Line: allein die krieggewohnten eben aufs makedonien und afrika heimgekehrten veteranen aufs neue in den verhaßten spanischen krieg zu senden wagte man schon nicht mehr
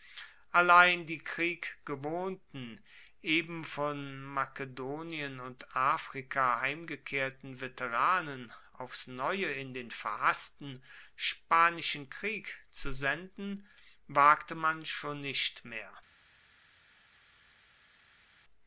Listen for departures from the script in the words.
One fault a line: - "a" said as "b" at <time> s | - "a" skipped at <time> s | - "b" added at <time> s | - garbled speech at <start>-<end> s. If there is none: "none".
- "aufs" said as "von" at 3.6 s